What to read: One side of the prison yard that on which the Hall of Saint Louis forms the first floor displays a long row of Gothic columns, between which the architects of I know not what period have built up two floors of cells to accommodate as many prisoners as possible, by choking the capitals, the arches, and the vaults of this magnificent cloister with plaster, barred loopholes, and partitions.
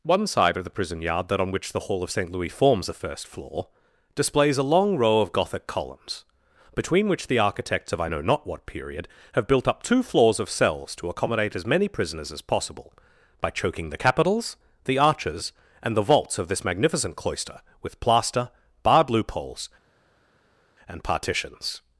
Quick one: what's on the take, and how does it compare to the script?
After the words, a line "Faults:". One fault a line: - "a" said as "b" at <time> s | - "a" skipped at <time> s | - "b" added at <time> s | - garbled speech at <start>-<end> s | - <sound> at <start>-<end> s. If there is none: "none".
One side of the prison yard that on which the Hall of Saint Louis forms the first floor displays a long row of Gothic columns, between which the architects of I know not what period have built up two floors of cells to accommodate as many prisoners as possible, by choking the capitals, the arches, and the vaults of this magnificent cloister with plaster, barred loopholes, and partitions.
Faults:
none